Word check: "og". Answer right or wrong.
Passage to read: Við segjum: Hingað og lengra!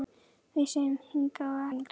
right